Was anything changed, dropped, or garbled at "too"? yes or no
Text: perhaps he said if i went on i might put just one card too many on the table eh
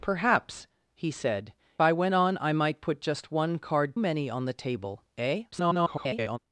yes